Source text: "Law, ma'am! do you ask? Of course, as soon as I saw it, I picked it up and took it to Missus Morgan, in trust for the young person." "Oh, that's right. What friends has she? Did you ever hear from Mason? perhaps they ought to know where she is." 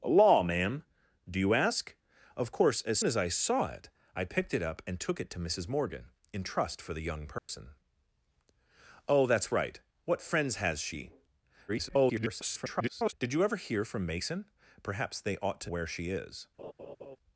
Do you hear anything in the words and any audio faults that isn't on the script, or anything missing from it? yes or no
yes